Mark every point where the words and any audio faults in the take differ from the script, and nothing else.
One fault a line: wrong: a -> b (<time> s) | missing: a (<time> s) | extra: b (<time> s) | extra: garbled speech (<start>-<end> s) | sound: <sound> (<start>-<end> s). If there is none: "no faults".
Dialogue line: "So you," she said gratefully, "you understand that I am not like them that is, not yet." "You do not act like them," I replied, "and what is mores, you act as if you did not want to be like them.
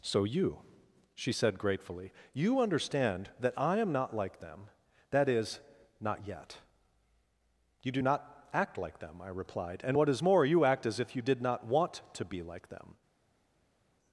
wrong: mores -> more (10.2 s)